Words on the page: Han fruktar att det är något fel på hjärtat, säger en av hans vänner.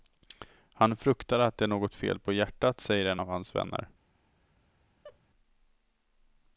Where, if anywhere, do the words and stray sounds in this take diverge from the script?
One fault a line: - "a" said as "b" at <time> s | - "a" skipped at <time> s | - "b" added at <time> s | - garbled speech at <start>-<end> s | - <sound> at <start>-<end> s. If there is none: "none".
- laugh at 5.0-5.2 s